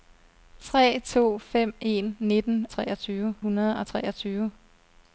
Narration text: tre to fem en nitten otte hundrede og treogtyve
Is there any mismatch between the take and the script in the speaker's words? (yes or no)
yes